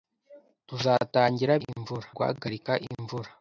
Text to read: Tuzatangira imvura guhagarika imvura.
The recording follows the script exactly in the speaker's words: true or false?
true